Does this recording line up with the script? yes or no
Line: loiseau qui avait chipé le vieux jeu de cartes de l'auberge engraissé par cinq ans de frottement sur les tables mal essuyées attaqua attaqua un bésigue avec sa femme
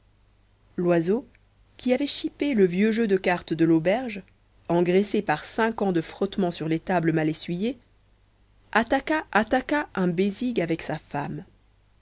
yes